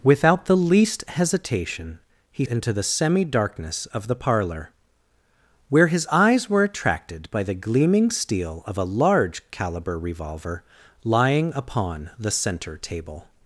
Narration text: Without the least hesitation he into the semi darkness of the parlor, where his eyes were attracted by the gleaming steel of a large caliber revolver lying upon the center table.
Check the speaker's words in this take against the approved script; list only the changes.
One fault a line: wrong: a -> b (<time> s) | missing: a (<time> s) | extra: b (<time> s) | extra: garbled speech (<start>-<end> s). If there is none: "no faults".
no faults